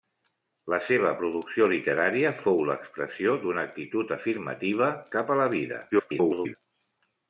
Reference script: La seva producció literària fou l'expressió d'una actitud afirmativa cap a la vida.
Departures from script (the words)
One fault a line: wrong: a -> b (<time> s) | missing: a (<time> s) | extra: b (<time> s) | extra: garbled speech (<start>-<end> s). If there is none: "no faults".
extra: garbled speech (5.9-6.6 s)